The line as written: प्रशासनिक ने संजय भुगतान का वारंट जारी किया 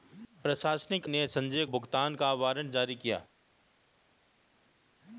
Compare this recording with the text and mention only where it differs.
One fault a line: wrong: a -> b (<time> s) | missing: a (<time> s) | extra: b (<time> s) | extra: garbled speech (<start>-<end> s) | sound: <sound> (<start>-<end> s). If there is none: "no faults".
no faults